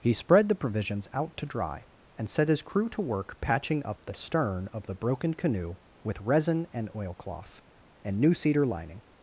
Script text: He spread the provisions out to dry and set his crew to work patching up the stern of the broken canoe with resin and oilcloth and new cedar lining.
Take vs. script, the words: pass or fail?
pass